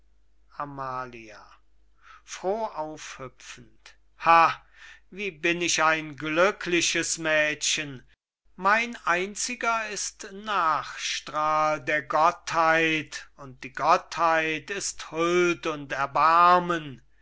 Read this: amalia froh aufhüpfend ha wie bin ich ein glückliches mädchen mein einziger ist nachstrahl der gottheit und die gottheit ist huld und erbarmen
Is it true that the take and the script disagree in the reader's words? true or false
false